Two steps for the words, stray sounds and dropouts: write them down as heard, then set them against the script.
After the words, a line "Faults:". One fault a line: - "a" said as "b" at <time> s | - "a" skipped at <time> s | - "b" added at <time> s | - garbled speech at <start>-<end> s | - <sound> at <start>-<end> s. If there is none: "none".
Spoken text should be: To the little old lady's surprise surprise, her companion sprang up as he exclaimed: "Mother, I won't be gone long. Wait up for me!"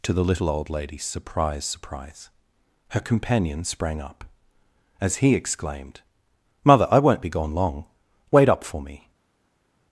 To the little old lady's surprise surprise, her companion sprang up as he exclaimed: "Mother, I won't be gone long. Wait up for me!"
Faults:
none